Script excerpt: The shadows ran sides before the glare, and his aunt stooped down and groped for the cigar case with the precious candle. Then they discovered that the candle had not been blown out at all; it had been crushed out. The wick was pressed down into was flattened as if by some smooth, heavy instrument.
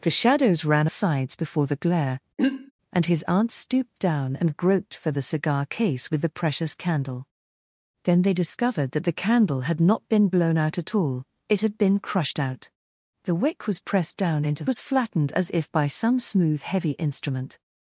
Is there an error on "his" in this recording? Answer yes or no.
no